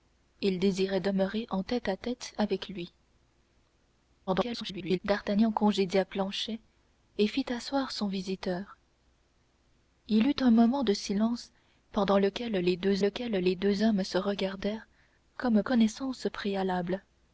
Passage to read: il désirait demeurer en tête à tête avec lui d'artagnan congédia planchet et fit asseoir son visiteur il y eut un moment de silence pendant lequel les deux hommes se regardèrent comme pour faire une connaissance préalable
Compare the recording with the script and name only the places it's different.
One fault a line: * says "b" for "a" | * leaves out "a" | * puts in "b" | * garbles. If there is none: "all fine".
* garbles
* puts in "lequel les deux"
* leaves out "pour faire une"